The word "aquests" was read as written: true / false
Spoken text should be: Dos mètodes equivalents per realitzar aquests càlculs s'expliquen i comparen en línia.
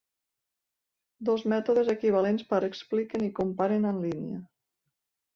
false